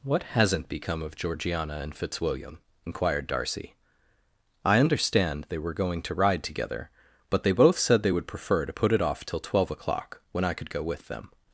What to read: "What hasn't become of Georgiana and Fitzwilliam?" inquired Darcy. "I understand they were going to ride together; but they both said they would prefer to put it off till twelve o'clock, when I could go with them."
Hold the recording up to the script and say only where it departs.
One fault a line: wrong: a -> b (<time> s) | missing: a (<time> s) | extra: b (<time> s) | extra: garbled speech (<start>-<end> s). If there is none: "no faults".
no faults